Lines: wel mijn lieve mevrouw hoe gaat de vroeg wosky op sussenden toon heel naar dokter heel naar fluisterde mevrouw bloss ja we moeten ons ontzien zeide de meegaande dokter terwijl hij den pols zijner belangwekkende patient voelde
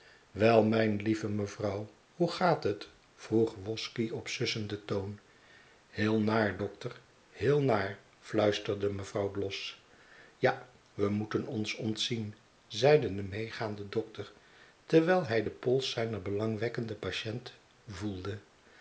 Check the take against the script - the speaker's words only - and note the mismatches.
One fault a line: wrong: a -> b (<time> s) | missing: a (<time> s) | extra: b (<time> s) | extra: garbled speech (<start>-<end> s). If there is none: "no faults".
wrong: de -> het (2.6 s)